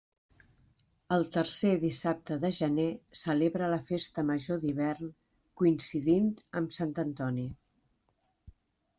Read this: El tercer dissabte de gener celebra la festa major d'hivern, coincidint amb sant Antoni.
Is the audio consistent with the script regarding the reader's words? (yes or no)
yes